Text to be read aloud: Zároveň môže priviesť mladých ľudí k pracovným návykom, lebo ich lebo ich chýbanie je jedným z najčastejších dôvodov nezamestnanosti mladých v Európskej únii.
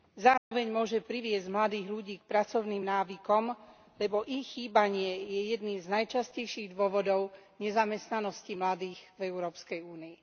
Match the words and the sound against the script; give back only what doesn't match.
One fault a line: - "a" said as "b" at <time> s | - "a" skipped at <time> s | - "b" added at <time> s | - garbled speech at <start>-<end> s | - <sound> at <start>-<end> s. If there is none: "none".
- dropout at 0.4-0.5 s
- "lebo ich" skipped at 4.5 s